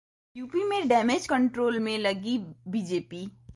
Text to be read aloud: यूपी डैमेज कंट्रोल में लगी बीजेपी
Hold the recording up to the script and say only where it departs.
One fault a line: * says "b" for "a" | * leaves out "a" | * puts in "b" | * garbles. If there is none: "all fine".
* puts in "में"